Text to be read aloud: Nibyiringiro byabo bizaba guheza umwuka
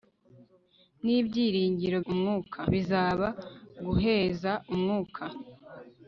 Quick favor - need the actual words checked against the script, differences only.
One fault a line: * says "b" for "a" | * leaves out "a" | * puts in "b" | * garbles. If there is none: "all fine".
* says "umwuka" for "byabo"